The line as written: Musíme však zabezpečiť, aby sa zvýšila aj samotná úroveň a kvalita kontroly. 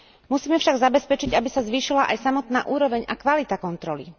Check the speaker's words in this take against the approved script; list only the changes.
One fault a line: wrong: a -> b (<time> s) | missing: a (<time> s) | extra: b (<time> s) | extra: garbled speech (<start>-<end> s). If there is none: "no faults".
no faults